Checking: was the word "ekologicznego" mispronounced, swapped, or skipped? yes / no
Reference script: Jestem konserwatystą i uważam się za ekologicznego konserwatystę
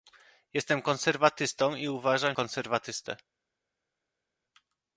yes